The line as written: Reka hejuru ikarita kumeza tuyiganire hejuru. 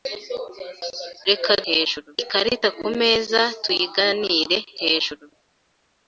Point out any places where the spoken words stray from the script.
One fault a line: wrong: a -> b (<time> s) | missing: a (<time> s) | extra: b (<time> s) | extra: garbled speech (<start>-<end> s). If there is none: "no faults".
no faults